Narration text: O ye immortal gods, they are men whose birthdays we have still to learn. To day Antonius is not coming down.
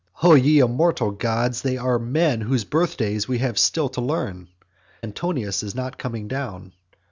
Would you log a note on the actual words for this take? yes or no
yes